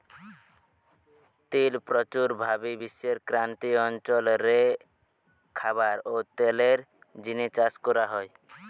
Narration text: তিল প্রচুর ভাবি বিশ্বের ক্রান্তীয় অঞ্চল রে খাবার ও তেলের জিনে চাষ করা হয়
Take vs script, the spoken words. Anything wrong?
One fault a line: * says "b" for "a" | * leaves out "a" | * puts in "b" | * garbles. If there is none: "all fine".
all fine